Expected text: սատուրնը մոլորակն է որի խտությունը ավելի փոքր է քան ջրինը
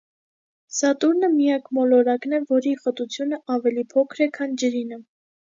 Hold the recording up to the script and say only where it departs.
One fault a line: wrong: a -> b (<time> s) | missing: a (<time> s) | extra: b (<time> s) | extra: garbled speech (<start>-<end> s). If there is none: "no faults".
extra: միակ (1.3 s)